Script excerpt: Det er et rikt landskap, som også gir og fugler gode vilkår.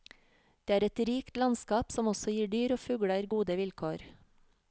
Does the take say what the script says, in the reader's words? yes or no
no